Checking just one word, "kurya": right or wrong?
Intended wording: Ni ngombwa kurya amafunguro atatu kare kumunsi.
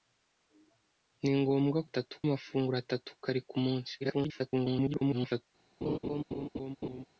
wrong